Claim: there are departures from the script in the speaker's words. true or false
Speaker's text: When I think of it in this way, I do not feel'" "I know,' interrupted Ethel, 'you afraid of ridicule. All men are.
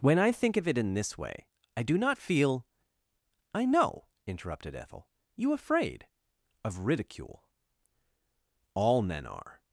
false